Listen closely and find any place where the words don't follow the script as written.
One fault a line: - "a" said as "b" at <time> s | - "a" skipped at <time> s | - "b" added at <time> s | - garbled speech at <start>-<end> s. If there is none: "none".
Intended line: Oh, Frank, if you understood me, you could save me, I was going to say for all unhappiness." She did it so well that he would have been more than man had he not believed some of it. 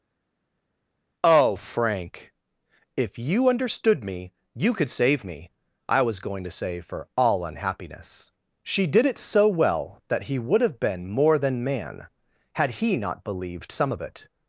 none